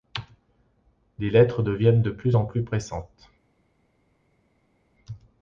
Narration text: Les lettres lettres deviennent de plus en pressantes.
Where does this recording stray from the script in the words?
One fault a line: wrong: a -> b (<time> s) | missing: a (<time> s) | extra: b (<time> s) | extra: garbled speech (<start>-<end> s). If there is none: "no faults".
missing: lettres (1.6 s)
extra: plus (2.4 s)